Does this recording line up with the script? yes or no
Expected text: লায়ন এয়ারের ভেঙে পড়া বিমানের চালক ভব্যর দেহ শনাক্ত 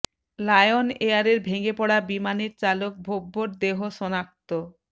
yes